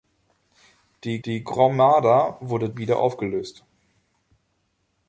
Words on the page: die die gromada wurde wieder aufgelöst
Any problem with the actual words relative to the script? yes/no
no